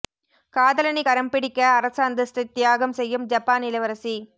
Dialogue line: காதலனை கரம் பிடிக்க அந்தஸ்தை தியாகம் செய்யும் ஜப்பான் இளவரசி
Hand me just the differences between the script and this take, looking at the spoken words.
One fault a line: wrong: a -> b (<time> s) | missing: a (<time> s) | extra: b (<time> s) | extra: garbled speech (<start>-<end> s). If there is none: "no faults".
extra: அரச (1.7 s)